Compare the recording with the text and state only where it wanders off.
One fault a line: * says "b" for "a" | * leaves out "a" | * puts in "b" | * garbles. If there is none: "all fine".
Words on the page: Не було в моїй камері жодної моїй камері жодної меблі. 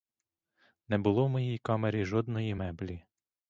* leaves out "моїй камері жодної"